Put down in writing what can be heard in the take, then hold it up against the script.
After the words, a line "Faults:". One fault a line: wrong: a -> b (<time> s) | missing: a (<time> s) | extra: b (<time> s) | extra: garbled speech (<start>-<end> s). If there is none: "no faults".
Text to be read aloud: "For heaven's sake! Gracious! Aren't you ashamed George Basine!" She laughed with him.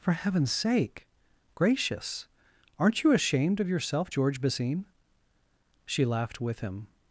"For heaven's sake! Gracious! Aren't you ashamed of yourself, George Basine!" She laughed with him.
Faults:
extra: of yourself (3.6 s)